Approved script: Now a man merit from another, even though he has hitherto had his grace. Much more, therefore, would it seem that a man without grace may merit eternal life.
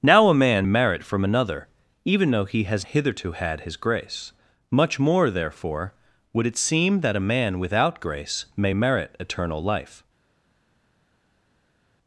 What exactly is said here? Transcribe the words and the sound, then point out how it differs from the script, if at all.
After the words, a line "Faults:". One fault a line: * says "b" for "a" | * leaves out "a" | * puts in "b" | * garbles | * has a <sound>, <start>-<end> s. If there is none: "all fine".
Now a man merit from another, even though he has hitherto had his grace. Much more, therefore, would it seem that a man without grace may merit eternal life.
Faults:
all fine